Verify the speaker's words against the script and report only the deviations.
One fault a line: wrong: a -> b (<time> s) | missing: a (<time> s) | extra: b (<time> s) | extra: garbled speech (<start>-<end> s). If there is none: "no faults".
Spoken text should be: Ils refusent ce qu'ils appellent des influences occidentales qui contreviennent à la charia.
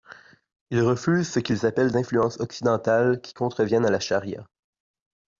missing: des (1.9 s)